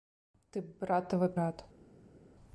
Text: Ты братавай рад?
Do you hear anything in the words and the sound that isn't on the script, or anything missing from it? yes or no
no